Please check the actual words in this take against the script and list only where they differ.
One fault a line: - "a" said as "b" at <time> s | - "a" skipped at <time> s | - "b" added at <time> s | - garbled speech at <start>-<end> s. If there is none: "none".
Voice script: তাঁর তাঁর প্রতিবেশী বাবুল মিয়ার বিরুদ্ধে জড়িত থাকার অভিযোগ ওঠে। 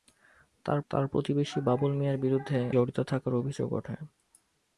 none